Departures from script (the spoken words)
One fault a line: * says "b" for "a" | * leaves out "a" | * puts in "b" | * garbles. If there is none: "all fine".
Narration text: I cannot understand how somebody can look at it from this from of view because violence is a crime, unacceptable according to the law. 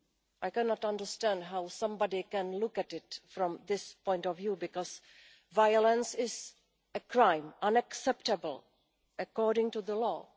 * says "point" for "from"